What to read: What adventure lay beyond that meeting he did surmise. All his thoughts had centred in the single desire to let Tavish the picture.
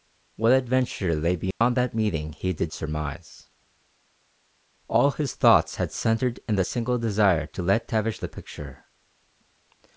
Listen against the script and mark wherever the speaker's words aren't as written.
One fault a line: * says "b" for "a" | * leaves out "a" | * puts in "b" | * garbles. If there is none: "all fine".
all fine